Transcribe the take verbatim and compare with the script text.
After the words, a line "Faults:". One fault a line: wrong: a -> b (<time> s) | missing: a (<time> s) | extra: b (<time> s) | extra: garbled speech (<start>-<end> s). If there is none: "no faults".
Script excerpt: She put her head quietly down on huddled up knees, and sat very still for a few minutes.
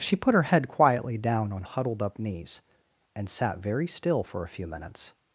She put her head quietly down on huddled up knees, and sat very still for a few minutes.
Faults:
no faults